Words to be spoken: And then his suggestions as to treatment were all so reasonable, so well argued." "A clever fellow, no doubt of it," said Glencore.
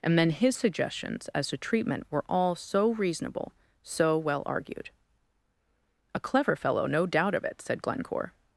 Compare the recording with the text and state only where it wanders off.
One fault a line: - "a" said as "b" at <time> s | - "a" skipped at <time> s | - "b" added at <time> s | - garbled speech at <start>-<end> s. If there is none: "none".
none